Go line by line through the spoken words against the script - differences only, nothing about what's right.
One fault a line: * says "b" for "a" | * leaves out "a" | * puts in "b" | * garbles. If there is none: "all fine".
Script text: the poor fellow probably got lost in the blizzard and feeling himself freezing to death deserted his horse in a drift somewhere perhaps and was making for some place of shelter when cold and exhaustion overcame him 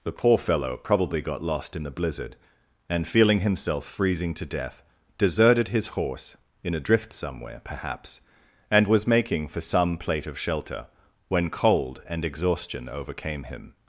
* says "plate" for "place"